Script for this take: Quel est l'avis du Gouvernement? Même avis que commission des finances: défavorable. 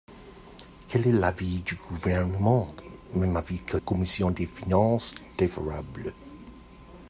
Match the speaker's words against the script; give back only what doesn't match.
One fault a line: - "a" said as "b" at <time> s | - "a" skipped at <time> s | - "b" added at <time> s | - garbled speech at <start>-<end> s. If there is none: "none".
none